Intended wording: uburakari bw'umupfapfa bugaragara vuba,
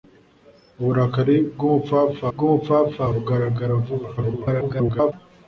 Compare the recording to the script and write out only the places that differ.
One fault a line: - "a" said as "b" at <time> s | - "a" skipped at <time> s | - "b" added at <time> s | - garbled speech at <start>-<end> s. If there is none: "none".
- "bw'umupfapfa" added at 2.3 s
- garbled speech at 4.2-5.1 s